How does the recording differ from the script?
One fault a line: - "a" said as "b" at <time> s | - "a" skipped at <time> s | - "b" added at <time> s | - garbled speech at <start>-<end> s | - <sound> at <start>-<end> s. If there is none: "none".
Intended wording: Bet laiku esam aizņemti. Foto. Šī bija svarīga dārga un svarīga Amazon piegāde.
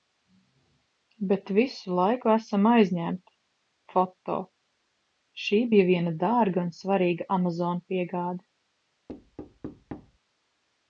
- "visu" added at 1.6 s
- "svarīga" said as "viena" at 5.9 s
- thud at 9.1-10.2 s